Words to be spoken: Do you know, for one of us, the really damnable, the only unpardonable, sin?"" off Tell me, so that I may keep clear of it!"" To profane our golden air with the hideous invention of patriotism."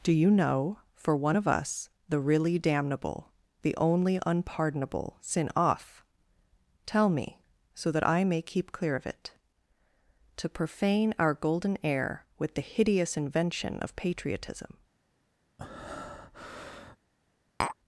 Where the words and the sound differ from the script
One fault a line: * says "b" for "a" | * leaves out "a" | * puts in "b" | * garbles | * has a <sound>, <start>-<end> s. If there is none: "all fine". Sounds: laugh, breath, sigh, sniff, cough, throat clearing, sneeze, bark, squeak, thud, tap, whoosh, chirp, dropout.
* has a breath, 15.6-17.0 s
* has a tap, 17.6-17.8 s